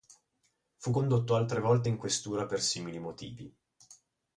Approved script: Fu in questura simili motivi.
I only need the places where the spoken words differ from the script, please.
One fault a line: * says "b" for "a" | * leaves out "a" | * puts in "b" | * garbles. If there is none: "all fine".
* puts in "condotto altre volte"
* puts in "per"